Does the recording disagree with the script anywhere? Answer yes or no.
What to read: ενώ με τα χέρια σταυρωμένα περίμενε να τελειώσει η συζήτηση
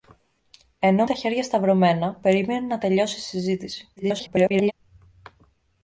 yes